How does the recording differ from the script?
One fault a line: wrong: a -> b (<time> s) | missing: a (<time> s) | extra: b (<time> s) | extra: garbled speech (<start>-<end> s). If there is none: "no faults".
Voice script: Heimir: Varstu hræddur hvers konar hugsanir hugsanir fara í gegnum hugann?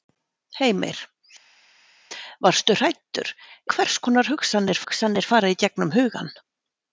no faults